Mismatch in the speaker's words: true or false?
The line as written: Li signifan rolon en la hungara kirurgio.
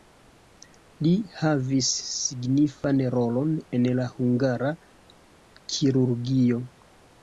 true